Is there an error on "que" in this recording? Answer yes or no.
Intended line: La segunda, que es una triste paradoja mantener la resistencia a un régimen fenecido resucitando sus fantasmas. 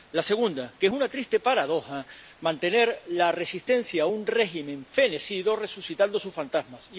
no